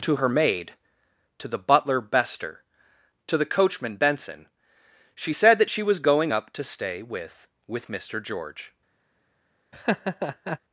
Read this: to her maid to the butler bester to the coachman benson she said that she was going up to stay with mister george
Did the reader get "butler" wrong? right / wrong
right